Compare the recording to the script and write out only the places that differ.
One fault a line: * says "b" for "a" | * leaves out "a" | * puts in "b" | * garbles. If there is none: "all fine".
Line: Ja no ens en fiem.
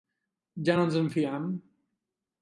all fine